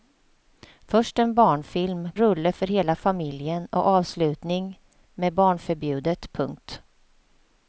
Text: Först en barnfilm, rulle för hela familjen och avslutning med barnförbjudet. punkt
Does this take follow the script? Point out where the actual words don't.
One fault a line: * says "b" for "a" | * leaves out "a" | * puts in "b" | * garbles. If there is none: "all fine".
all fine